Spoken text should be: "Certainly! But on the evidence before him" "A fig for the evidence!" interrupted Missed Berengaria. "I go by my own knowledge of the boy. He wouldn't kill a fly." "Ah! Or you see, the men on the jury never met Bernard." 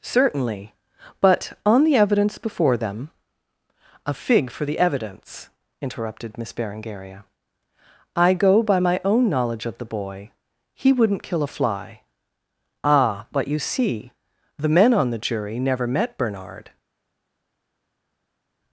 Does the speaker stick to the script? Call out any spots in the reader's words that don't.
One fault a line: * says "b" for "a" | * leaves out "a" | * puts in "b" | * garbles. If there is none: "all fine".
* says "them" for "him"
* says "Miss" for "Missed"
* says "But" for "Or"